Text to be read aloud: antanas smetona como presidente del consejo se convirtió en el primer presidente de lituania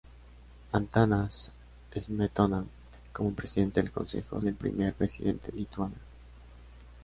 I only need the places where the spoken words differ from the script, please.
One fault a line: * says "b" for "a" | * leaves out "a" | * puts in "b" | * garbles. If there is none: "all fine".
* leaves out "se convirtió"
* leaves out "de"